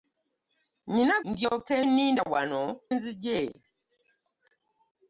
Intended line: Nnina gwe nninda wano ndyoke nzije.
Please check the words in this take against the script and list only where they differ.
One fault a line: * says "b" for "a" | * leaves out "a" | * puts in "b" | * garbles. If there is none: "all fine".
* says "ndyoke" for "gwe"
* leaves out "ndyoke"